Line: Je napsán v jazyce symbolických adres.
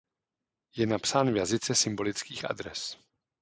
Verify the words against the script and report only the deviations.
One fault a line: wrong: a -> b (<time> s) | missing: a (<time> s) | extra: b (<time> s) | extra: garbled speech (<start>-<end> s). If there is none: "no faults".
no faults